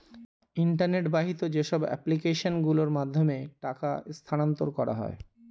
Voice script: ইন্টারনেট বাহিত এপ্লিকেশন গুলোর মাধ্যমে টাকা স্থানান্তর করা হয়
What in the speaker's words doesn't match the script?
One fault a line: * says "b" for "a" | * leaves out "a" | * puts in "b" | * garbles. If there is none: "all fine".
* puts in "যেসব"